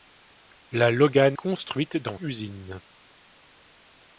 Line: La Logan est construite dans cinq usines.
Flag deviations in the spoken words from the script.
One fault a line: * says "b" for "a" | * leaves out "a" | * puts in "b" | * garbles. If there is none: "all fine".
* leaves out "est"
* leaves out "cinq"